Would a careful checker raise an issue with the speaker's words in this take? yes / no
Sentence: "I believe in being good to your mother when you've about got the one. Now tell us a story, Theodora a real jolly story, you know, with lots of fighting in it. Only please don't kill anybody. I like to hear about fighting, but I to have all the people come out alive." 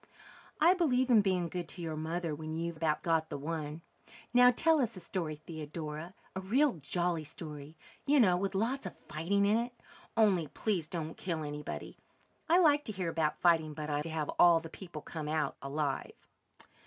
no